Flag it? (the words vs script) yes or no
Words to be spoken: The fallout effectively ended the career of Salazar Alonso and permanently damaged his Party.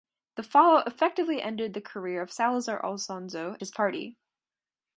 yes